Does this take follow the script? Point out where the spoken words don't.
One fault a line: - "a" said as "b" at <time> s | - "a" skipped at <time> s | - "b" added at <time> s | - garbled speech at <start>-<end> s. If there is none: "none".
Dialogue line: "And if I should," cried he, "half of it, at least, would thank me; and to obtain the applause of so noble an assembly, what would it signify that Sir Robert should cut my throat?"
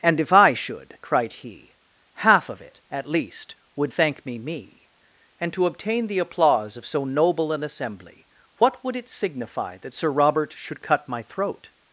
- "me" added at 4.4 s